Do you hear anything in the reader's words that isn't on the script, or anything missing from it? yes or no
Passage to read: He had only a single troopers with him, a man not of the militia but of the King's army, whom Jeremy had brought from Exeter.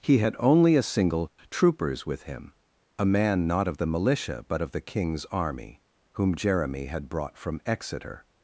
no